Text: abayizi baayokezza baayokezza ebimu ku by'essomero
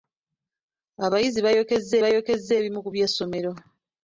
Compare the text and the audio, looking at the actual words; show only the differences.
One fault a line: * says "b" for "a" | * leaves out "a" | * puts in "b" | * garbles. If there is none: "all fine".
all fine